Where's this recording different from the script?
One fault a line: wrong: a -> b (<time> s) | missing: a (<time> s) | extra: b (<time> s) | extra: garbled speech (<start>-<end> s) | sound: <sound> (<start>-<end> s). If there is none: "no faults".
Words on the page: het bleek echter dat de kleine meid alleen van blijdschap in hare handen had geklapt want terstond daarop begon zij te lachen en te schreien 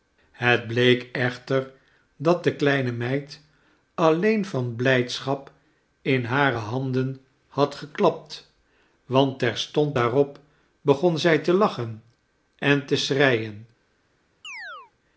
sound: chirp (14.4-14.9 s)